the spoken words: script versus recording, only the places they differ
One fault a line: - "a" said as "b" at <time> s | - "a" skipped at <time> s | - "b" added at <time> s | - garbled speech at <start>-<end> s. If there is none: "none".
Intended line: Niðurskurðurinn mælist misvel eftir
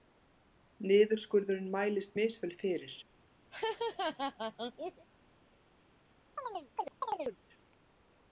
- "eftir" said as "fyrir" at 2.6 s